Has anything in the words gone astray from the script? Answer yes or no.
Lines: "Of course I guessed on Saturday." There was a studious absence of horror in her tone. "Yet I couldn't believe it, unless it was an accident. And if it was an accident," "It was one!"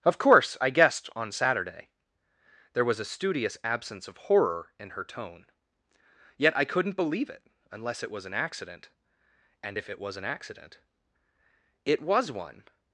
no